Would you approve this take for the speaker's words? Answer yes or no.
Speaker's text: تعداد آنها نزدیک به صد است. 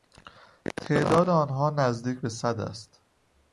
yes